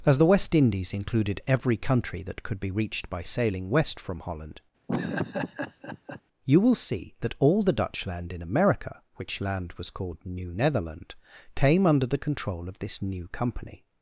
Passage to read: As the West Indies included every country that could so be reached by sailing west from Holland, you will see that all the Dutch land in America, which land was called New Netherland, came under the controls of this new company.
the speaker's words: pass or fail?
fail